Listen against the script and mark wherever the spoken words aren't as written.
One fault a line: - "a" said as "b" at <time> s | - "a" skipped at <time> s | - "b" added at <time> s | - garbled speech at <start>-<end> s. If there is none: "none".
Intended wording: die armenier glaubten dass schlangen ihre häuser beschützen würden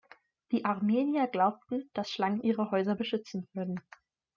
none